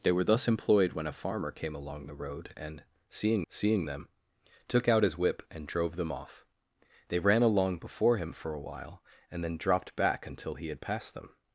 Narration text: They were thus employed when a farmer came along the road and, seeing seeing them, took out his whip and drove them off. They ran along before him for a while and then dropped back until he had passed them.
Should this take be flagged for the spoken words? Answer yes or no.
no